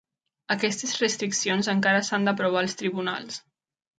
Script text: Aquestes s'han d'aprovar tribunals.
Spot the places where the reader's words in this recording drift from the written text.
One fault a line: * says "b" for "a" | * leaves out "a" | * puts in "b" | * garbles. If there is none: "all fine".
* puts in "restriccions encara"
* puts in "als"